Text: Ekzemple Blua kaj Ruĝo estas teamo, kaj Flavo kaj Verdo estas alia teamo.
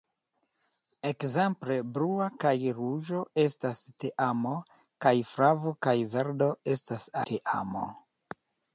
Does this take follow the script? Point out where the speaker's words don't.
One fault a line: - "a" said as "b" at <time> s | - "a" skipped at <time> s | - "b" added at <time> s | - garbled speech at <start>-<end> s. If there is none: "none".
- "alia" skipped at 7.1 s